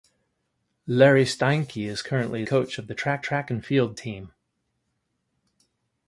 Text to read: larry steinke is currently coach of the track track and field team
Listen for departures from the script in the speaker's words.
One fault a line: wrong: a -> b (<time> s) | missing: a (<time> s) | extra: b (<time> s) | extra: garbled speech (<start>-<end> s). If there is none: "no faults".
no faults